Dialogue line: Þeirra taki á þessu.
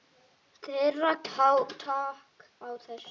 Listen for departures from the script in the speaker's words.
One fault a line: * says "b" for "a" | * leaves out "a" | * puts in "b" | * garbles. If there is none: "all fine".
all fine